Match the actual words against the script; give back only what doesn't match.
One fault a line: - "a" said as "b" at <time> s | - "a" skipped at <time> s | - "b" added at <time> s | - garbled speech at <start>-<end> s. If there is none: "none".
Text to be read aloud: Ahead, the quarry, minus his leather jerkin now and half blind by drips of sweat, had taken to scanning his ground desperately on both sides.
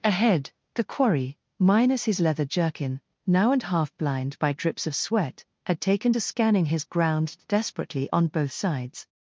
none